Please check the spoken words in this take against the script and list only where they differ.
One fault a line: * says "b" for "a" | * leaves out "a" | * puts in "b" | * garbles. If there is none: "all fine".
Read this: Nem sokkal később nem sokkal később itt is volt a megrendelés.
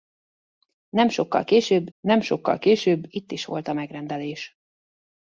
all fine